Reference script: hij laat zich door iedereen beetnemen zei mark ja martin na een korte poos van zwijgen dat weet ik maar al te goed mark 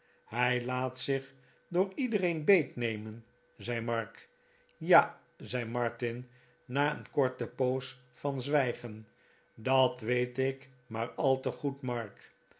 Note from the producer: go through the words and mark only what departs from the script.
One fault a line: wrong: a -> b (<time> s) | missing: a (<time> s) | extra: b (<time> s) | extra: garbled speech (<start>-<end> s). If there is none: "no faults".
extra: zei (5.4 s)